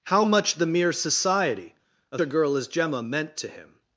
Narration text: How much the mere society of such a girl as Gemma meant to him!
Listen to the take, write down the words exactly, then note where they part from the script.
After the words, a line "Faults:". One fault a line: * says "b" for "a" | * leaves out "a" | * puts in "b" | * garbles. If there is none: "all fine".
How much the mere society of a girl as Gemma meant to him!
Faults:
* leaves out "such"